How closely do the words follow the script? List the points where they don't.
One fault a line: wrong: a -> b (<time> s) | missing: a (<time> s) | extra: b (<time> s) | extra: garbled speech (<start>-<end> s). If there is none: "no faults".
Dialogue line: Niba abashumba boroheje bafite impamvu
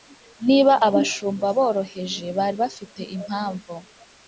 extra: bari (2.4 s)